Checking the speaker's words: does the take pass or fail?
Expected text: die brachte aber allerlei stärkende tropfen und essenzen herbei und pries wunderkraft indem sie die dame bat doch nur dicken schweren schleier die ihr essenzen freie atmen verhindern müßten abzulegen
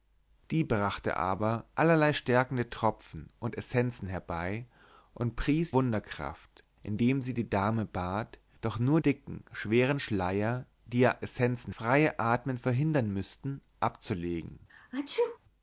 pass